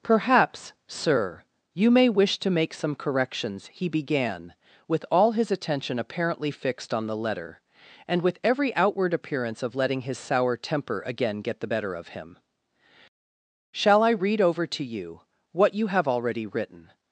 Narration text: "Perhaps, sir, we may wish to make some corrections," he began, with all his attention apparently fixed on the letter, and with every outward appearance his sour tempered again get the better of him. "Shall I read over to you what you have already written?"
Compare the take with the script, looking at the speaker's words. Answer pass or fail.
fail